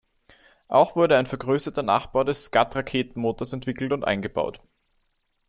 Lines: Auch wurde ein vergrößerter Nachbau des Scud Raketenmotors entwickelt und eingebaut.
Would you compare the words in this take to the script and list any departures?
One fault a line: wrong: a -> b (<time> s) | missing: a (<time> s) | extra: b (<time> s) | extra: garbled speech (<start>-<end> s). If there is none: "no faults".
no faults